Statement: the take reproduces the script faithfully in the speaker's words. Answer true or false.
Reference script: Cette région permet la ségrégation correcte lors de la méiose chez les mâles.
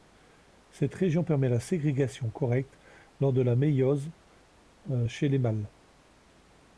true